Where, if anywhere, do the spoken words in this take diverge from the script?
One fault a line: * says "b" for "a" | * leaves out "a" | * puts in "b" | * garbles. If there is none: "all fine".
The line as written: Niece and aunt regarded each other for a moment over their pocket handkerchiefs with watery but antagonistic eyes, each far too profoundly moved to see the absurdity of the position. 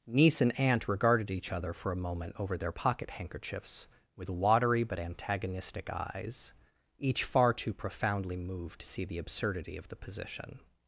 all fine